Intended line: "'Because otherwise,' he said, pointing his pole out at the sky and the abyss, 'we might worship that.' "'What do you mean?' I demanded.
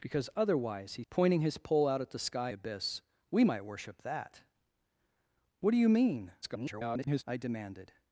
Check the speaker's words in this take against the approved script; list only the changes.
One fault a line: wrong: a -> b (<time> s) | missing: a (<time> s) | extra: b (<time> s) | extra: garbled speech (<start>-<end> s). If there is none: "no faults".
missing: said (1.0 s)
missing: and (2.5 s)
extra: garbled speech (6.4-7.2 s)